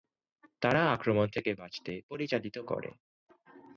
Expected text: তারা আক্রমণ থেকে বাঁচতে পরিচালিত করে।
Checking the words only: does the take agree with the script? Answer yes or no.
yes